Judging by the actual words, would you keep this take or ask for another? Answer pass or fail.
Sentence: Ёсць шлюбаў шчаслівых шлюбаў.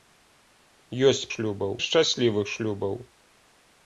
pass